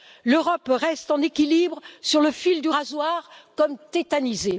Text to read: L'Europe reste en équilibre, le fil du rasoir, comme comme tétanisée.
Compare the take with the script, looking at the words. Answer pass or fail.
fail